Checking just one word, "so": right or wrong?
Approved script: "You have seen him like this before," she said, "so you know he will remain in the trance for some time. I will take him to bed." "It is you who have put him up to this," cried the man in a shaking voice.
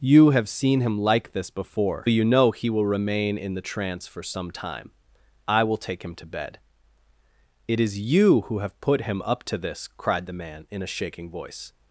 wrong